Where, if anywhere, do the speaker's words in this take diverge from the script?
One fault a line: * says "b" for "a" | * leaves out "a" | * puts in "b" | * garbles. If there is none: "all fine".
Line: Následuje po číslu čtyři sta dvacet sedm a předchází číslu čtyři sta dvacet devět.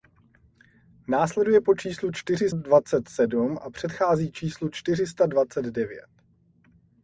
* leaves out "sta"